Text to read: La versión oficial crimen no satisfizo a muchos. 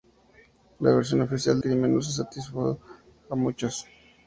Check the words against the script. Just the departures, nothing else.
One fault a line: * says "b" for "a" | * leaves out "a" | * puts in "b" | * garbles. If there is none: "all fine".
all fine